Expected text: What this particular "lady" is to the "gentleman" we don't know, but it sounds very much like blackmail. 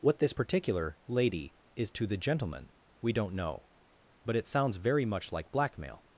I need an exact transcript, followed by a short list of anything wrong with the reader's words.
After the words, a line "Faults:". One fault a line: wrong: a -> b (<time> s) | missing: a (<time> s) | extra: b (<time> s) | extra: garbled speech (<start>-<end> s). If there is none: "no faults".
What this particular "lady" is to the "gentleman" we don't know, but it sounds very much like blackmail.
Faults:
no faults